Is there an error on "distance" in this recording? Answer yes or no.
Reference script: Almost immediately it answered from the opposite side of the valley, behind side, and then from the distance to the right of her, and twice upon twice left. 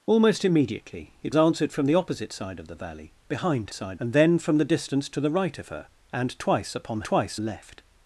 no